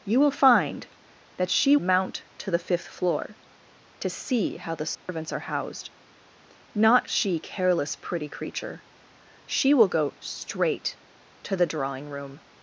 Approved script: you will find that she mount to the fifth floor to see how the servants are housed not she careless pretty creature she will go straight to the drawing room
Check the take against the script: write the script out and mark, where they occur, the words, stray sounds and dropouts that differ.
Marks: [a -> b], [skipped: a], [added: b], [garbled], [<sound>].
you will find that she mount to the fifth floor to see how the servants [dropout] are housed not she careless pretty creature she will go straight to the drawing room